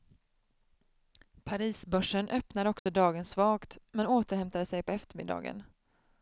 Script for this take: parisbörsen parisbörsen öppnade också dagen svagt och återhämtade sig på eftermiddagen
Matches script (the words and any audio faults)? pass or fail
fail